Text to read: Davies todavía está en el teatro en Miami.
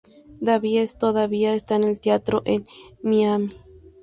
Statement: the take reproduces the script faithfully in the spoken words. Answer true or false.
true